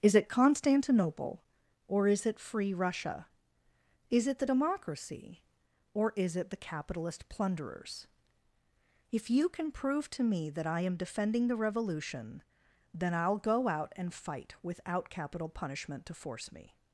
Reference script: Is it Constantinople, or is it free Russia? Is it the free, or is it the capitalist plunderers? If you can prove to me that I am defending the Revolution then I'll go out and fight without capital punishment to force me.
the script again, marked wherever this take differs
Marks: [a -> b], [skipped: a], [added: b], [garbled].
Is it Constantinople, or is it free Russia? Is it the [free, -> democracy] or is it the capitalist plunderers? If you can prove to me that I am defending the Revolution then I'll go out and fight without capital punishment to force me.